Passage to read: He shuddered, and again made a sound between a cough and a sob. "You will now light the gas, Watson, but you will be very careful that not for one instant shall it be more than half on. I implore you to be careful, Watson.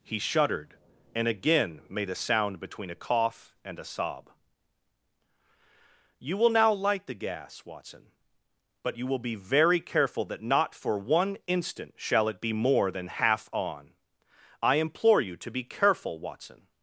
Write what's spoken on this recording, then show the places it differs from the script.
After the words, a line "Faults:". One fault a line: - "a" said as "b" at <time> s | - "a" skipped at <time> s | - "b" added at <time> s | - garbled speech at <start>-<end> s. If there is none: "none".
He shuddered, and again made a sound between a cough and a sob. "You will now light the gas, Watson, but you will be very careful that not for one instant shall it be more than half on. I implore you to be careful, Watson.
Faults:
none